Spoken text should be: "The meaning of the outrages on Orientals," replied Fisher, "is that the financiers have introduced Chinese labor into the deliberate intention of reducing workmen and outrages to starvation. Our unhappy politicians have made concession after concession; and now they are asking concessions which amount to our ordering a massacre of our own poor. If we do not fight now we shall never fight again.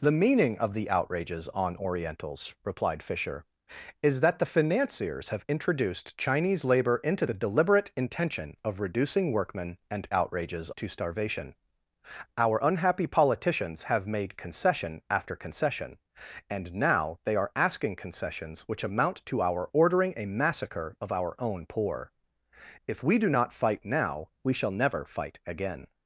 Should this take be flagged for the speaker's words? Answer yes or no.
no